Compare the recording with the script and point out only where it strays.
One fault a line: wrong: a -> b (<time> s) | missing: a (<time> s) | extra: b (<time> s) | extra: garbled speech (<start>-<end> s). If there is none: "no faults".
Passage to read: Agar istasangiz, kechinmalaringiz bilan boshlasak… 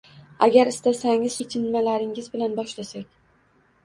no faults